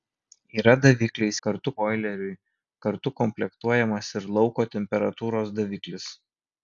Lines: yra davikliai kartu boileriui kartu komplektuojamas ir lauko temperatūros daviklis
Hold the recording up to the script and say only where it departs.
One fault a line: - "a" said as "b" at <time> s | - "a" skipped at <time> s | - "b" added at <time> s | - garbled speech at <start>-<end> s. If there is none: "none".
none